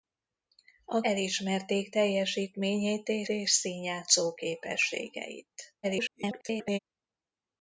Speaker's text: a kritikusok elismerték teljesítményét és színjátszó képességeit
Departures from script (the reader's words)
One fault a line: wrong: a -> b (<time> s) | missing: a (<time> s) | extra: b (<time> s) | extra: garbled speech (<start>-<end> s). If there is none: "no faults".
missing: kritikusok (1.0 s)
extra: és (3.3 s)
extra: garbled speech (5.8-6.8 s)